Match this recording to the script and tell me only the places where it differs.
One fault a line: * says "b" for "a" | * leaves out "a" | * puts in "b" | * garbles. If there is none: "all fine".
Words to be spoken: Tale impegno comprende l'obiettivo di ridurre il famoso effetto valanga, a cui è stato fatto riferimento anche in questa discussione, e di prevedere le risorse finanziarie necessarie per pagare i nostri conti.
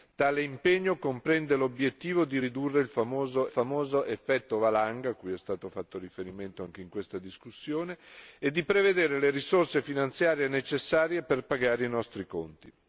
* puts in "famoso"